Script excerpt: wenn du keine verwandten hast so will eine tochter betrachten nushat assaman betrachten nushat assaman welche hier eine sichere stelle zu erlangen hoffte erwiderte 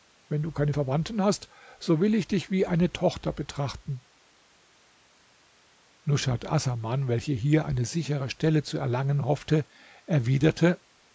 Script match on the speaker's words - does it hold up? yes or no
no